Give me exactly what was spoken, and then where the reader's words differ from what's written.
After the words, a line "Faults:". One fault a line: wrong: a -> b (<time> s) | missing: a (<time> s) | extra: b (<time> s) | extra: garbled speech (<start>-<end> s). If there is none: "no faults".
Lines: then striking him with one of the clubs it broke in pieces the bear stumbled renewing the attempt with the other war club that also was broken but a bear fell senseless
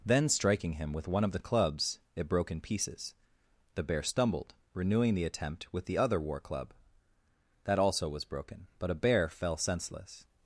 then striking him with one of the clubs it broke in pieces the bear stumbled renewing the attempt with the other war club that also was broken but a bear fell senseless
Faults:
no faults